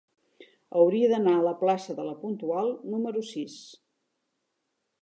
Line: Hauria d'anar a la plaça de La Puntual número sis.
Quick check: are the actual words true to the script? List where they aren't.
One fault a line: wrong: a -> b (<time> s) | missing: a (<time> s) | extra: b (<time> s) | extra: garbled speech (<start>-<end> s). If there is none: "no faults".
no faults